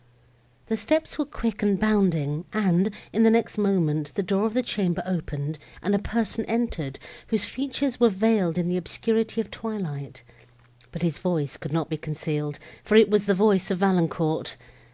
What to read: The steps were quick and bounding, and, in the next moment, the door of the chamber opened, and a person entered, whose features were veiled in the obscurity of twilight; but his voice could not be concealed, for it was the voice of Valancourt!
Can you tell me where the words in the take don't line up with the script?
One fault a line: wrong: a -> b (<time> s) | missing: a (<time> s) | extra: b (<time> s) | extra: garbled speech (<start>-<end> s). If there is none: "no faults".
no faults